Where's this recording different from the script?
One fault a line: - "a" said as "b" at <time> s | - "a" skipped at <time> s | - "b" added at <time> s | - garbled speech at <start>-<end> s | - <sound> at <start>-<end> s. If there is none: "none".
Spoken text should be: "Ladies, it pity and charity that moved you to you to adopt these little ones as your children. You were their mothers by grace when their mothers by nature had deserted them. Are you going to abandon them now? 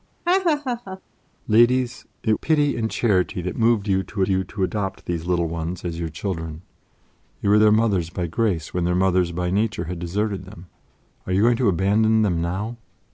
- laugh at 0.3-1.0 s